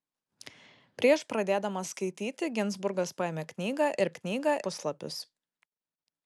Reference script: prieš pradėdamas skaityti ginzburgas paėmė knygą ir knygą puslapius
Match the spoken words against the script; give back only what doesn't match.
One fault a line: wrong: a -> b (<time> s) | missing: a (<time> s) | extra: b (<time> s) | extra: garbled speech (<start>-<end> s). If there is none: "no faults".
no faults